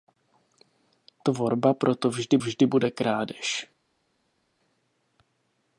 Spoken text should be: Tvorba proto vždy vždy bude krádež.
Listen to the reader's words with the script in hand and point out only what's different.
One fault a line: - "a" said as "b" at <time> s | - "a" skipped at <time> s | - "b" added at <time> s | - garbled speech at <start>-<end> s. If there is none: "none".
none